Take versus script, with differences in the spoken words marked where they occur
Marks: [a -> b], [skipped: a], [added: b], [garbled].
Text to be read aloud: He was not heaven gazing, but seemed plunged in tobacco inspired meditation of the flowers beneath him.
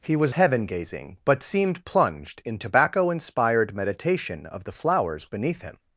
He was [skipped: not] heaven gazing, but seemed plunged in tobacco inspired meditation of the flowers beneath him.